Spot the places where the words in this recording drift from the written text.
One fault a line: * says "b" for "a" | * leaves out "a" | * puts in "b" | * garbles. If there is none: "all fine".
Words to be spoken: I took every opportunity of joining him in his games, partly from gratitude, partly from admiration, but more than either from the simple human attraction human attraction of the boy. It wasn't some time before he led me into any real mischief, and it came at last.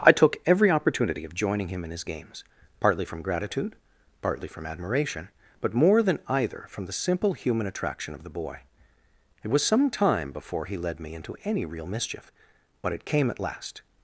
* leaves out "human attraction"
* says "was" for "wasn't"
* says "but" for "and"